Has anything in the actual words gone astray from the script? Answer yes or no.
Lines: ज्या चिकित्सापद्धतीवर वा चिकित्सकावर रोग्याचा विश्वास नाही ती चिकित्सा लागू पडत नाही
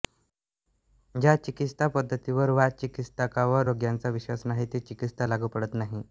no